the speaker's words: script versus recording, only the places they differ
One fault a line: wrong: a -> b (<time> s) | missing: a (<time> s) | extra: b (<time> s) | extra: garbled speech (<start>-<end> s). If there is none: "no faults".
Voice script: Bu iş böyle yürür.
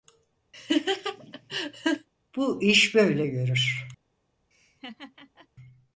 no faults